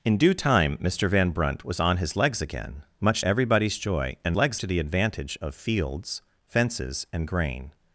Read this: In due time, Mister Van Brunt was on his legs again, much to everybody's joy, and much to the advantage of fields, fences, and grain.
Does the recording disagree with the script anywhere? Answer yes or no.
yes